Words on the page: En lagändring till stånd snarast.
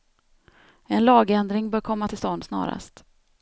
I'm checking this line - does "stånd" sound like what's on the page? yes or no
yes